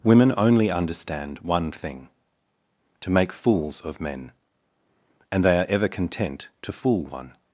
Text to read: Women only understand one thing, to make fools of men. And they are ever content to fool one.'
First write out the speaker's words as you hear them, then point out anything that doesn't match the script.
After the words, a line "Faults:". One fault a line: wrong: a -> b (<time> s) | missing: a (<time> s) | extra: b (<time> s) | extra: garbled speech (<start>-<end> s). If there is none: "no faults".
Women only understand one thing, to make fools of men. And they are ever content to fool one.'
Faults:
no faults